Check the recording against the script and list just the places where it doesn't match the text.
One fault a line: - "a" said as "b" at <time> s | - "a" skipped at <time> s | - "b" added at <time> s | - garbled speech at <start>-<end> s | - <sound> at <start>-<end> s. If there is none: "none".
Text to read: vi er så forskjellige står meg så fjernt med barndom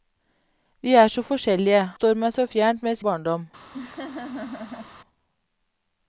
- laugh at 3.7-4.9 s